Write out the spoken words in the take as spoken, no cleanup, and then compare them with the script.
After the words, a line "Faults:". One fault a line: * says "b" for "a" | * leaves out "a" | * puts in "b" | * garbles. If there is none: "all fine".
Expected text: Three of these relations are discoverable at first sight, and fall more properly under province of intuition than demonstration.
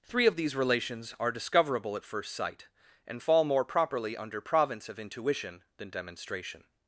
Three of these relations are discoverable at first sight, and fall more properly under province of intuition than demonstration.
Faults:
all fine